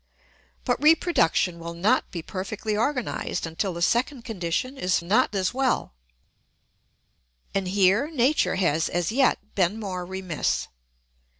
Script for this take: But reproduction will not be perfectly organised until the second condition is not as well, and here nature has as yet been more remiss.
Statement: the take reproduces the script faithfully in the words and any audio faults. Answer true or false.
true